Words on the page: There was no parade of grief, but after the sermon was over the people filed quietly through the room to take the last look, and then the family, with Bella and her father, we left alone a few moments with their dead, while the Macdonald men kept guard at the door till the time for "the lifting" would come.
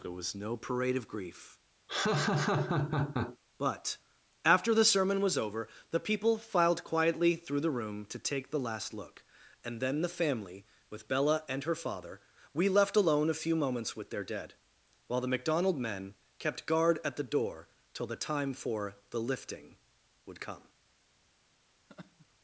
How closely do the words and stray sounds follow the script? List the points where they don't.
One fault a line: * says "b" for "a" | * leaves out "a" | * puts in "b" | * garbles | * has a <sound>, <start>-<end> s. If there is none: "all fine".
* has a laugh, 1.9-3.4 s
* has a laugh, 21.9-22.3 s